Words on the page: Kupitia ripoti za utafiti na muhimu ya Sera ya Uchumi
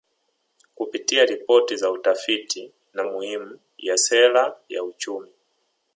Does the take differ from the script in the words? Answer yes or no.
no